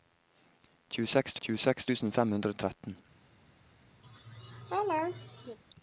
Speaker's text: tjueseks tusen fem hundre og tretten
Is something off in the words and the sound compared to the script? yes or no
yes